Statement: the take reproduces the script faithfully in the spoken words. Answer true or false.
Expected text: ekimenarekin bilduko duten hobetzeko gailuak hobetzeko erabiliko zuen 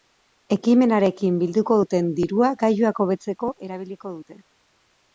false